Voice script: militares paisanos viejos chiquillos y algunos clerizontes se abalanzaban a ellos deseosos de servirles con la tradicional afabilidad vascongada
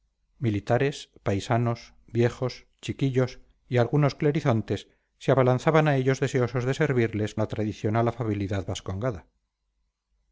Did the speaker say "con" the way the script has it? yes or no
no